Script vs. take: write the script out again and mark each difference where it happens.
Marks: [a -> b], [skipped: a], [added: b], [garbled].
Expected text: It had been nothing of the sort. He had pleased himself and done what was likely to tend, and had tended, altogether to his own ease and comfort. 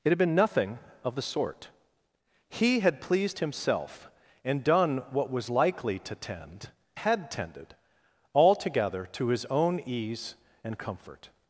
It had been nothing of the sort. He had pleased himself and done what was likely to tend, [skipped: and] had tended, altogether to his own ease and comfort.